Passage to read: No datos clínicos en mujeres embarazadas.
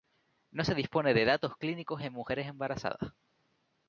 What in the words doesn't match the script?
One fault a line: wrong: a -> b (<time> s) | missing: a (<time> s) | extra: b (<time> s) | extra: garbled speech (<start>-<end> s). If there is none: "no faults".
extra: se dispone de (0.6 s)